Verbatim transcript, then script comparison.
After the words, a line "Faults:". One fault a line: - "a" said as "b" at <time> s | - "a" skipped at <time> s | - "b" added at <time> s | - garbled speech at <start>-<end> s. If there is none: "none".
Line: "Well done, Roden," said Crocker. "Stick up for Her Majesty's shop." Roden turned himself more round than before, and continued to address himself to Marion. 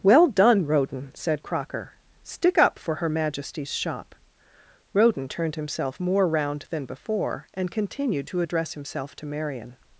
"Well done, Roden," said Crocker. "Stick up for Her Majesty's shop." Roden turned himself more round than before, and continued to address himself to Marion.
Faults:
none